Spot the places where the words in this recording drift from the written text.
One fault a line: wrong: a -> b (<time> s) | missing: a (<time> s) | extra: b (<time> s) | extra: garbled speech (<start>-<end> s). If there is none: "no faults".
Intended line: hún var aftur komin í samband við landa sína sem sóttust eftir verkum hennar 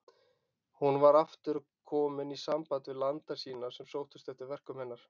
no faults